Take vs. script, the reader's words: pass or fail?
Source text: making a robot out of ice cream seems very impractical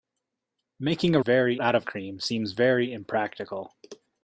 fail